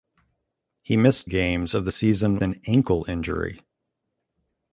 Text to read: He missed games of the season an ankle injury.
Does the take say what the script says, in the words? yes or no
yes